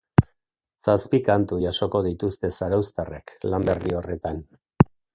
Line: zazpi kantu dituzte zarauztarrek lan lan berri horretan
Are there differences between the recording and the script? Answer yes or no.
yes